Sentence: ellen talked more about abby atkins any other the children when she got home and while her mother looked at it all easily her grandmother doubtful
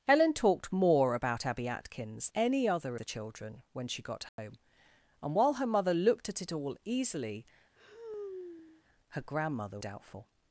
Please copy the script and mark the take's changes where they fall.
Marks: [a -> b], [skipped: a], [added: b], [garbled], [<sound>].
ellen talked more about abby atkins any other the children when she got home [dropout] and while her mother looked at it all easily [sigh] her grandmother doubtful